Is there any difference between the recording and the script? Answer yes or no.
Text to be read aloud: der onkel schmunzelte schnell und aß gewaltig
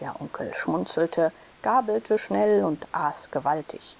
yes